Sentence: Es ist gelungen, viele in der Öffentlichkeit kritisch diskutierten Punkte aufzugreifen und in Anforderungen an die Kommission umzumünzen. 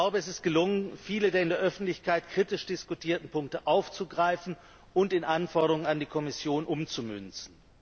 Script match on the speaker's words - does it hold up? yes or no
no